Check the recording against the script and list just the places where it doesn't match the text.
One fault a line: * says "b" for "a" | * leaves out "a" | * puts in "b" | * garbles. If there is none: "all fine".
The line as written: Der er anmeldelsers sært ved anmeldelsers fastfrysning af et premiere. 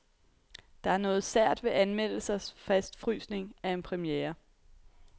* says "noget" for "anmeldelsers"
* says "en" for "et"